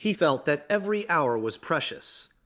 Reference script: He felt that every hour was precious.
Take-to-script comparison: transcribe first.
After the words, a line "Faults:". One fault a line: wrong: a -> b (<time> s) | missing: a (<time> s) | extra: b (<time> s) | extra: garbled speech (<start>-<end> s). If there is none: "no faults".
He felt that every hour was precious.
Faults:
no faults